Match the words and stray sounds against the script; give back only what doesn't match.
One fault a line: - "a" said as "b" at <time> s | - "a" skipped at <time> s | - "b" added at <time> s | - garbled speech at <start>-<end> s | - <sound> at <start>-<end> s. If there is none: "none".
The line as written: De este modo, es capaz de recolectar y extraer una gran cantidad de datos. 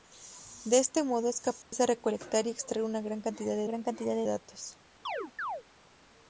- dropout at 1.6-1.7 s
- "gran cantidad de" added at 3.7 s
- chirp at 5.1-5.6 s